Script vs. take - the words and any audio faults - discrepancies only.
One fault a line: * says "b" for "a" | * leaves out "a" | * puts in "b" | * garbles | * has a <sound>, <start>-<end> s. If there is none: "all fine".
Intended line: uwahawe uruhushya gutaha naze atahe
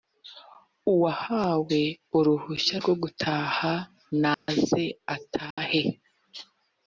* puts in "rwo"
* has a dropout, 4.3-4.5 s
* has a dropout, 5.5-5.6 s